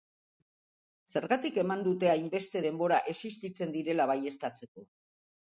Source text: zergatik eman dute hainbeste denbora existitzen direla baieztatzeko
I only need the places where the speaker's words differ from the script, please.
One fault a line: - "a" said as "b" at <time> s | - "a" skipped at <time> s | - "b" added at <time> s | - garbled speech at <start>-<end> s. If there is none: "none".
none